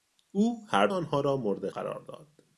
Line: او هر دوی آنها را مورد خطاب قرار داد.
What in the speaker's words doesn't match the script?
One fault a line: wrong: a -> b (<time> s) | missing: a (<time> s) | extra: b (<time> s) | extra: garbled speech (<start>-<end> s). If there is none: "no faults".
missing: دوی (0.9 s)
missing: خطاب (1.7 s)